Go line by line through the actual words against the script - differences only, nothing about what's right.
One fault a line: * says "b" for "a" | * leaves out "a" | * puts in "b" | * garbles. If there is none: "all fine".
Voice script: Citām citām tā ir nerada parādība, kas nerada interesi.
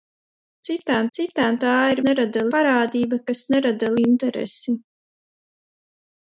all fine